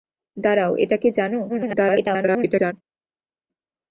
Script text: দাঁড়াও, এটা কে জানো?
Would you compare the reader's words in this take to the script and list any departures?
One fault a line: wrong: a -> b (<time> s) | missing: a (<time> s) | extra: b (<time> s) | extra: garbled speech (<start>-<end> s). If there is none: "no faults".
extra: garbled speech (1.5-2.7 s)